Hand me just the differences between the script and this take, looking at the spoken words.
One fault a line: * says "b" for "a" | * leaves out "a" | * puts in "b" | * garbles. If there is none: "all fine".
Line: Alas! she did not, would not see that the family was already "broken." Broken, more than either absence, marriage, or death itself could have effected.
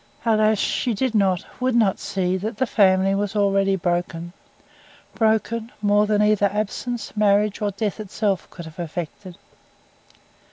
all fine